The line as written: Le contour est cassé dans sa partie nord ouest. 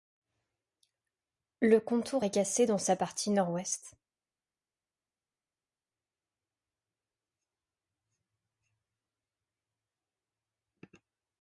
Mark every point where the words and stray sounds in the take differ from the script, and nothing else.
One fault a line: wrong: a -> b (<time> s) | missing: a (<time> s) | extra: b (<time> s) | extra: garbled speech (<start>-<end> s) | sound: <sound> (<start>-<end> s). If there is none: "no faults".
no faults